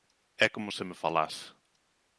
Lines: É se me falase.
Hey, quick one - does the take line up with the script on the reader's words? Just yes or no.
no